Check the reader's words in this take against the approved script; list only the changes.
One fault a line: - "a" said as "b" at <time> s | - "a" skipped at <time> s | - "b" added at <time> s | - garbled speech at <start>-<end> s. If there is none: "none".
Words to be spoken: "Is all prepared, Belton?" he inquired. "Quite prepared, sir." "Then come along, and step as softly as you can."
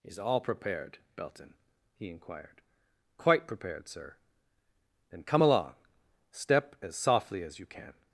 - "and" skipped at 5.7 s